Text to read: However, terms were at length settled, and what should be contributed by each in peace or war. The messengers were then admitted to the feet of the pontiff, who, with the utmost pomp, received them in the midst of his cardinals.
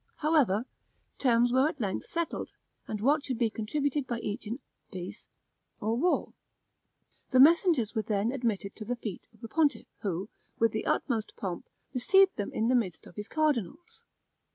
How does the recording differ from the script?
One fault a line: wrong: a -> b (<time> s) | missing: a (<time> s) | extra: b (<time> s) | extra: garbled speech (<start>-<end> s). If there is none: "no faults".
no faults